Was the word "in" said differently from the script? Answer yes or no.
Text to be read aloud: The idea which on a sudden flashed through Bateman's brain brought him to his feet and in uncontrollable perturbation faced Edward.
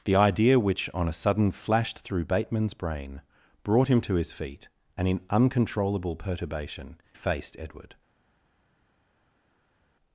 no